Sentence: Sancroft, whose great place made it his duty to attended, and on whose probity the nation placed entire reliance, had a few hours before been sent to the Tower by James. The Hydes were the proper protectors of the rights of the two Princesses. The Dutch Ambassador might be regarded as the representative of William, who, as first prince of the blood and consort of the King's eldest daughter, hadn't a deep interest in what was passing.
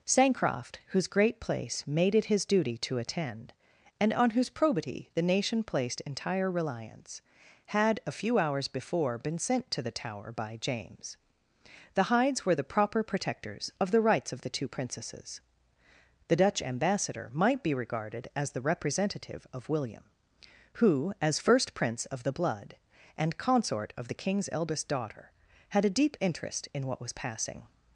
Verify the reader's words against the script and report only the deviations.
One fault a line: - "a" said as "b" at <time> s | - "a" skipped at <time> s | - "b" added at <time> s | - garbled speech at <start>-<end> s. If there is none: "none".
- "attended" said as "attend" at 3.0 s
- "hadn't" said as "had" at 25.7 s